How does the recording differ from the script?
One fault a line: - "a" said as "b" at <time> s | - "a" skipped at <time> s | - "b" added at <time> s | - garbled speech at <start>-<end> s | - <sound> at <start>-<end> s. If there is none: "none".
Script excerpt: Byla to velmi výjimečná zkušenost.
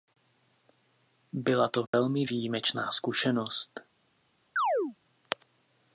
- dropout at 1.9-1.9 s
- chirp at 4.6-5.0 s